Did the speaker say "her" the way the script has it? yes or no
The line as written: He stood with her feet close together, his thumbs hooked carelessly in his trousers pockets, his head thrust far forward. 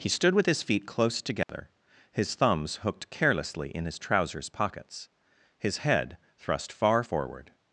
no